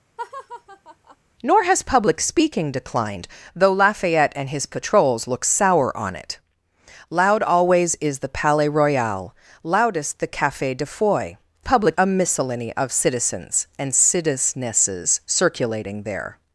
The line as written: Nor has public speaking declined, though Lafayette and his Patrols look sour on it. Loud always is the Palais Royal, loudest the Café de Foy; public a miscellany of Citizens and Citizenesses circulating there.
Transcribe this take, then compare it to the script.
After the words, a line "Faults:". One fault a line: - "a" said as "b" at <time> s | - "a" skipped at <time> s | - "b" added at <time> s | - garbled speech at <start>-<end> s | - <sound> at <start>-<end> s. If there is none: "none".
Nor has public speaking declined, though Lafayette and his Patrols look sour on it. Loud always is the Palais Royal, loudest the Café de Foy; public a miscellany of Citizens and Citizenesses circulating there.
Faults:
- laugh at 0.2-1.2 s